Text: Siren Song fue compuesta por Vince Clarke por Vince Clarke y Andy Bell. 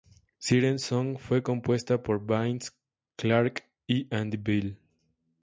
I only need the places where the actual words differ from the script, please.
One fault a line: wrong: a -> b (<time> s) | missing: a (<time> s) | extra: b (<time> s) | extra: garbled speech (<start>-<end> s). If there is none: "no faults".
missing: por Vince Clarke (3.7 s)